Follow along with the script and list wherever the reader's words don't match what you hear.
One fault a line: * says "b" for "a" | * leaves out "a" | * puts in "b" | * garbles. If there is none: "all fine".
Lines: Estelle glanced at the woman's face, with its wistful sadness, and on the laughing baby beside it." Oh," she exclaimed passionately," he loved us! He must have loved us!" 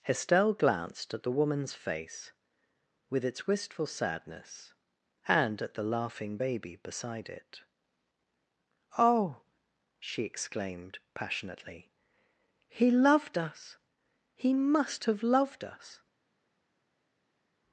* says "at" for "on"